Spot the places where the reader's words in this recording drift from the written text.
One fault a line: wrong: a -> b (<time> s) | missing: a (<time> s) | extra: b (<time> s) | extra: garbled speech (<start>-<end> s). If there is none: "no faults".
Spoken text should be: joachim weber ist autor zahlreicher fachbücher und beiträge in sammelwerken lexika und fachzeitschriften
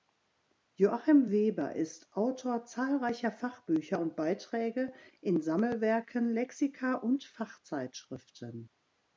no faults